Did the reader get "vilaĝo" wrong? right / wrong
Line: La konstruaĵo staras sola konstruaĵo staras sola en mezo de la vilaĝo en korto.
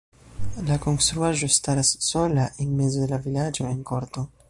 right